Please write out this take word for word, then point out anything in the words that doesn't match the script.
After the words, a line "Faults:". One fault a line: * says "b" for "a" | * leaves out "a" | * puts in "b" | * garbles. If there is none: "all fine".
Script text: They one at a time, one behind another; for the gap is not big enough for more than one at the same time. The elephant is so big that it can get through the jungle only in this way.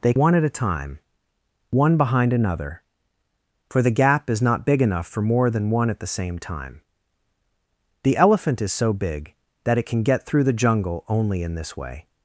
They one at a time, one behind another; for the gap is not big enough for more than one at the same time. The elephant is so big that it can get through the jungle only in this way.
Faults:
all fine